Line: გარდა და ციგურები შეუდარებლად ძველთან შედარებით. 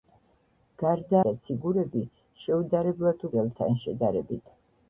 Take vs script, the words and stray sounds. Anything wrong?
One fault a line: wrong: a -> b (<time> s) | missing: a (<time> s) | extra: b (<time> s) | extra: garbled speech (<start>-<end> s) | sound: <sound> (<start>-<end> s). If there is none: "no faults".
no faults